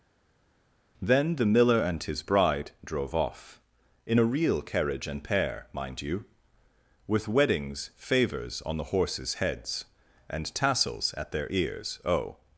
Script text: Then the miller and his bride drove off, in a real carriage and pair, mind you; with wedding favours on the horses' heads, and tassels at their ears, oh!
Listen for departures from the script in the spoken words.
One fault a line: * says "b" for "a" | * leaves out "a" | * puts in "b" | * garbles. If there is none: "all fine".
* says "weddings" for "wedding"